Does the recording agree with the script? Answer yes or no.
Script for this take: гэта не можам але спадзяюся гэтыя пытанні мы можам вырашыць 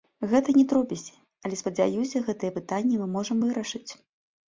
no